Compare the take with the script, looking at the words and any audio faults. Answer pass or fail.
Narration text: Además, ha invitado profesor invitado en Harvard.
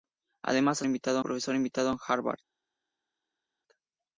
pass